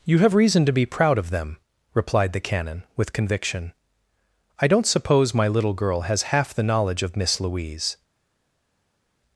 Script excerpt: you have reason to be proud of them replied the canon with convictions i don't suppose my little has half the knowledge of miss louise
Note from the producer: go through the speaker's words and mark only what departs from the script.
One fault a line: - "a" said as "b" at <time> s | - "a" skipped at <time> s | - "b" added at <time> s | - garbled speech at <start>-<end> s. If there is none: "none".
- "convictions" said as "conviction" at 3.1 s
- "girl" added at 5.7 s